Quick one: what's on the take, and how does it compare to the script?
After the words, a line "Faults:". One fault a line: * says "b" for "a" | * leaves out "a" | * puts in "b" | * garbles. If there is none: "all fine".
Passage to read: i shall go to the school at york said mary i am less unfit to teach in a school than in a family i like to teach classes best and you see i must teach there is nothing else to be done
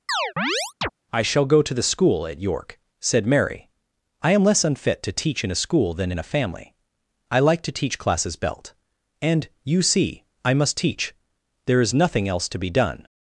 i shall go to the school at york said mary i am less unfit to teach in a school than in a family i like to teach classes belt and you see i must teach there is nothing else to be done
Faults:
* says "belt" for "best"